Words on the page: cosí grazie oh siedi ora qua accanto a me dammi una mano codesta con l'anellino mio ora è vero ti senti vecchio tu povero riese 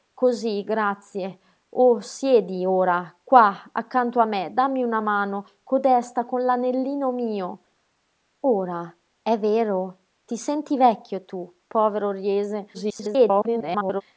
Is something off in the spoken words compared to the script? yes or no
yes